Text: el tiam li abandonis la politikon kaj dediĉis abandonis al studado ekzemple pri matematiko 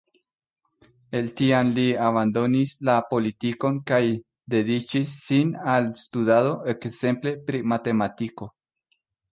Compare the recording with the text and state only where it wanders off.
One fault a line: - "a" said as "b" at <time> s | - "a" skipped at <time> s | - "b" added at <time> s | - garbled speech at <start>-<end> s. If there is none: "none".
- "abandonis" said as "sin" at 5.3 s